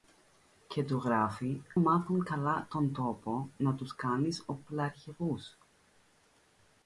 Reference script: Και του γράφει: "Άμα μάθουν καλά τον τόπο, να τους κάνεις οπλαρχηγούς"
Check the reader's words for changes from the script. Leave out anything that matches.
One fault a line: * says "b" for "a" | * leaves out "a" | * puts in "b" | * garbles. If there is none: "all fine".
* leaves out "Άμα"